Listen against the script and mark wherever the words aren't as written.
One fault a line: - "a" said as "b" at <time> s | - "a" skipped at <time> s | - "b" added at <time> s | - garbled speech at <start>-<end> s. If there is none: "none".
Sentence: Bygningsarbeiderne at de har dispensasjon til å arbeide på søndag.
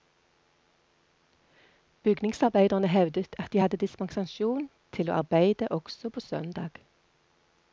- "hevdet" added at 2.9 s
- "har" said as "hadde" at 3.6 s
- "også" added at 5.7 s